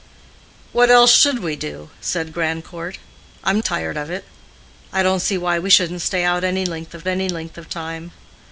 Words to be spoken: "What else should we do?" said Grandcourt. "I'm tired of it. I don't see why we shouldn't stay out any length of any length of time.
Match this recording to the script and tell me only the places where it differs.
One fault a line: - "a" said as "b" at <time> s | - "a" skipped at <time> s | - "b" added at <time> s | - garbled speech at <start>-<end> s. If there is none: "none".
none